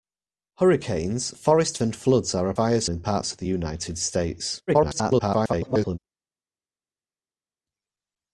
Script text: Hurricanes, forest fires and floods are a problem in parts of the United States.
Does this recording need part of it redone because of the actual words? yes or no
yes